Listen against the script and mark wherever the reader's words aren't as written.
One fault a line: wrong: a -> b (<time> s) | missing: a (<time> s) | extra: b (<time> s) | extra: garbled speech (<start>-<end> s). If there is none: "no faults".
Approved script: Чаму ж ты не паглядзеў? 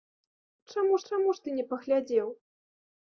extra: чаму (1.1 s)